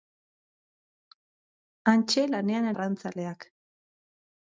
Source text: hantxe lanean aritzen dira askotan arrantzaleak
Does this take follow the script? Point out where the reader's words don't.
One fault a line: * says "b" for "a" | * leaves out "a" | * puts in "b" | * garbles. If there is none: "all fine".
* leaves out "aritzen dira askotan"